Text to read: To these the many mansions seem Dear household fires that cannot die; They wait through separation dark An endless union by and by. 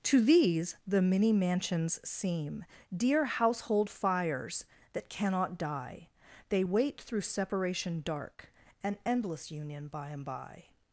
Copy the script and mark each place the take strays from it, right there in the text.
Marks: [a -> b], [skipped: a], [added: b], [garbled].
To these the many mansions seem Dear household fires that cannot die; They wait through separation dark An endless union by and by.